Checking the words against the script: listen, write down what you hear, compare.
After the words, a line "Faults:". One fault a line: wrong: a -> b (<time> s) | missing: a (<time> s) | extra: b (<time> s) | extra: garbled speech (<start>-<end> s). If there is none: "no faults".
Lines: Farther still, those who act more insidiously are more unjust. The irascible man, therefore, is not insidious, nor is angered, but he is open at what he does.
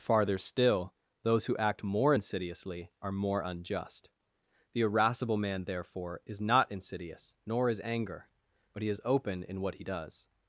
Farther still, those who act more insidiously are more unjust. The irascible man, therefore, is not insidious, nor is anger, but he is open in what he does.
Faults:
wrong: angered -> anger (7.8 s)
wrong: at -> in (9.4 s)